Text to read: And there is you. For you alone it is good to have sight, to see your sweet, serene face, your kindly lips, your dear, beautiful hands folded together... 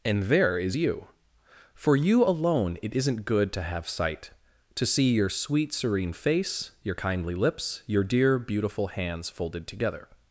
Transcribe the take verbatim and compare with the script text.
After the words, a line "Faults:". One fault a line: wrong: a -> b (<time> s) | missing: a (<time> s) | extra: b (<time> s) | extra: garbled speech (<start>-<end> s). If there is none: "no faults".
And there is you. For you alone it isn't good to have sight, to see your sweet, serene face, your kindly lips, your dear, beautiful hands folded together...
Faults:
wrong: is -> isn't (2.9 s)